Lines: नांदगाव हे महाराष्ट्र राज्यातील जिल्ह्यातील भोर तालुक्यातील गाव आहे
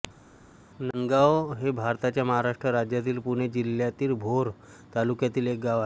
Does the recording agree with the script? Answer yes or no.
no